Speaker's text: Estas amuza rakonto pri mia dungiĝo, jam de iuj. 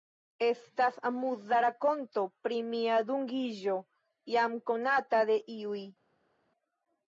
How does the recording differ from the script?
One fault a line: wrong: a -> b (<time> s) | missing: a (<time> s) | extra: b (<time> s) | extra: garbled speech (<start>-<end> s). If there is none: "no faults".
extra: konata (4.7 s)